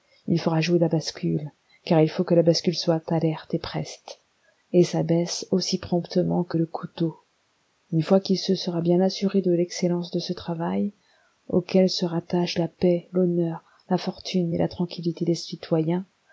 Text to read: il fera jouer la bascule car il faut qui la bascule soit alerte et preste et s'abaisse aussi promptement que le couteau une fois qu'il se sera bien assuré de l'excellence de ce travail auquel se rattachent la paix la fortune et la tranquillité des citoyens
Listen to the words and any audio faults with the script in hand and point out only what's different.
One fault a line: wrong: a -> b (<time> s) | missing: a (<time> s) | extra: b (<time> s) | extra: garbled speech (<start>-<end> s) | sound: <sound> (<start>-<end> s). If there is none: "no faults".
wrong: qui -> que (2.2 s)
extra: l'honneur (13.1 s)